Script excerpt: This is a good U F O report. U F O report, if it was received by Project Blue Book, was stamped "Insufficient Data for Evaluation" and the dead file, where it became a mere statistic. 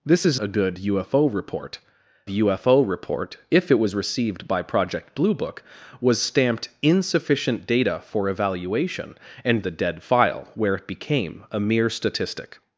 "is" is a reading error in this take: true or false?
false